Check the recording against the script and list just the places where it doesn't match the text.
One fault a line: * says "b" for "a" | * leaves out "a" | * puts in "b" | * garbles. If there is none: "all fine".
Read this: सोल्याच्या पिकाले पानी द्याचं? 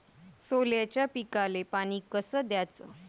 * puts in "कस"